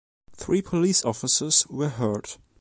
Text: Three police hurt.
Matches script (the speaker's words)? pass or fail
fail